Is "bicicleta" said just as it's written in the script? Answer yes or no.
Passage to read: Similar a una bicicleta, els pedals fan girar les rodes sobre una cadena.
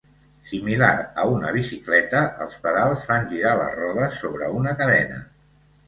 yes